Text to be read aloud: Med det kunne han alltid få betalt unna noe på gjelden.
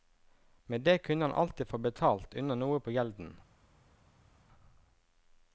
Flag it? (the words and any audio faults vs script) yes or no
no